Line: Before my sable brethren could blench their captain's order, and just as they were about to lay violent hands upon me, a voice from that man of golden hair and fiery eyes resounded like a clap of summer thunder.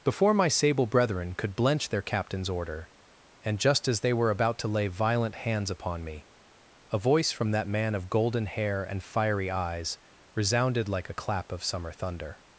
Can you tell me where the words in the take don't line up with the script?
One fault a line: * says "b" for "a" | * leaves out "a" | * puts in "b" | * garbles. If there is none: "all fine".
all fine